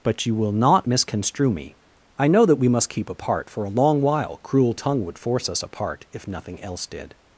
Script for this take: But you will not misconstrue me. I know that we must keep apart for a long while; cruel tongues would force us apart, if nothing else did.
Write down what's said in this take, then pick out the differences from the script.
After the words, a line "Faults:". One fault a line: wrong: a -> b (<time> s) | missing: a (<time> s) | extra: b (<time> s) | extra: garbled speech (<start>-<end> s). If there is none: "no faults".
But you will not misconstrue me. I know that we must keep apart for a long while; cruel tongue would force us apart, if nothing else did.
Faults:
wrong: tongues -> tongue (4.7 s)